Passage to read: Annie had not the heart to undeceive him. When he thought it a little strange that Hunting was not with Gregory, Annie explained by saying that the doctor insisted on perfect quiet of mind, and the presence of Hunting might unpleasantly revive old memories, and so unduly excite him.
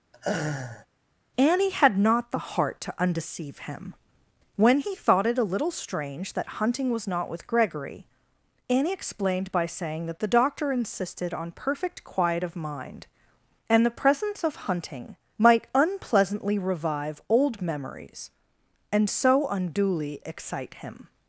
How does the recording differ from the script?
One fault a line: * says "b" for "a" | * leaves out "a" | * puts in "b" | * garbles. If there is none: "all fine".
all fine